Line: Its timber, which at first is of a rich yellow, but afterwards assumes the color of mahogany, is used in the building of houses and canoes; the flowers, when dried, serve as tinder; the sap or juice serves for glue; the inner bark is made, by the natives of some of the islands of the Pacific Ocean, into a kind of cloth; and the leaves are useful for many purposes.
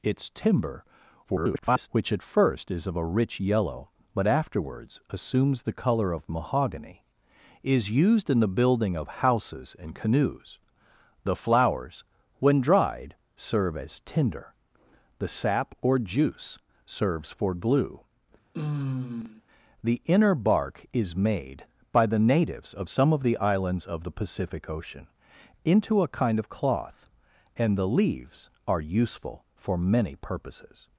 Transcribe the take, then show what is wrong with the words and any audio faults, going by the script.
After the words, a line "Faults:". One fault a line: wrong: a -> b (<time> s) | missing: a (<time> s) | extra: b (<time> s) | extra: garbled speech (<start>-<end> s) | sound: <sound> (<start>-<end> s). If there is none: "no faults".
Its timber, [garbled] which at first is of a rich yellow, but afterwards assumes the color of mahogany, is used in the building of houses and canoes; the flowers, when dried, serve as tinder; the sap or juice serves for glue; the inner bark is made, by the natives of some of the islands of the Pacific Ocean, into a kind of cloth; and the leaves are useful for many purposes.
Faults:
extra: garbled speech (1.2-1.9 s)
sound: sigh (18.5-19.4 s)